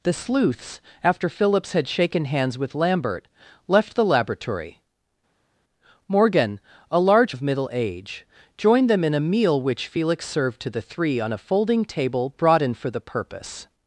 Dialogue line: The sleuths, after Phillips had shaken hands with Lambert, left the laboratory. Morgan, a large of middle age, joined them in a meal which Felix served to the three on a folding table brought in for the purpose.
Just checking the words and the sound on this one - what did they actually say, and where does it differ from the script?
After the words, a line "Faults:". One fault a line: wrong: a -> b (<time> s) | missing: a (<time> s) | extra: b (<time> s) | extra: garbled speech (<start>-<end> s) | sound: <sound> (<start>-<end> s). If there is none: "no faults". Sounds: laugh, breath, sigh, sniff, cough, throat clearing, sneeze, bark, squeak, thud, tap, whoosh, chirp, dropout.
The sleuths, after Phillips had shaken hands with Lambert, left the laboratory. Morgan, a large of middle age, joined them in a meal which Felix served to the three on a folding table brought in for the purpose.
Faults:
no faults